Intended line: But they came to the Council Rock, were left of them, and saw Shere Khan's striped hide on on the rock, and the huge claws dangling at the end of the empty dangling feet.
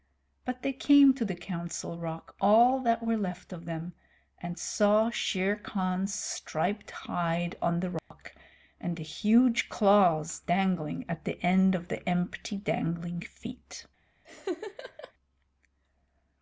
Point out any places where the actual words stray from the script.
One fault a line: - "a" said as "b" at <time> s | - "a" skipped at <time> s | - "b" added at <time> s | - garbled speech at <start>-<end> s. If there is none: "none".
- "all that" added at 2.4 s
- "on" skipped at 7.8 s